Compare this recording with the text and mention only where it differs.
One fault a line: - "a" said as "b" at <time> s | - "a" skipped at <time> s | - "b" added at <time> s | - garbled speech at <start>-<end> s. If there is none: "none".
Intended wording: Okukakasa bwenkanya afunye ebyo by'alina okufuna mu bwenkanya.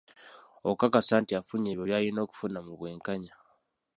- "bwenkanya" said as "nti" at 1.2 s